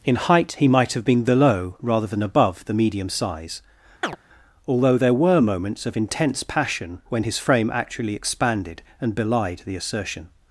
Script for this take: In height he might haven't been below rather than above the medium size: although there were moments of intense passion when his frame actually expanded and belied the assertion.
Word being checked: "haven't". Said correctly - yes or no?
no